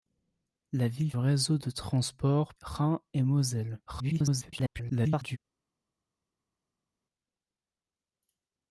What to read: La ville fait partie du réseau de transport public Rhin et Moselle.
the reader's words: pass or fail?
fail